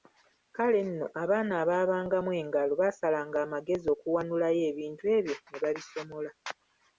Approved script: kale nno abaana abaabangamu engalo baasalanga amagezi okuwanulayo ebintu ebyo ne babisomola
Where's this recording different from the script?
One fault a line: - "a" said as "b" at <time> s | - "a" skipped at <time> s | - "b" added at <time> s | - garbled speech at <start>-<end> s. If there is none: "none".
none